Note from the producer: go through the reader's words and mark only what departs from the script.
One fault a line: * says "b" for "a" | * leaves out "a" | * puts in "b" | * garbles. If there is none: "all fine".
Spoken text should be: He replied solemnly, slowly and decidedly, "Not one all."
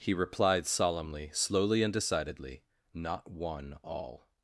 all fine